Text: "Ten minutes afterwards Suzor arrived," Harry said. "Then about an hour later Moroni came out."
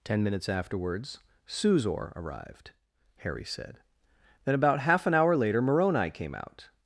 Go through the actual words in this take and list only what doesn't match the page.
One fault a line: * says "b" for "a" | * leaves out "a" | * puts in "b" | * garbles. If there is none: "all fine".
* puts in "half"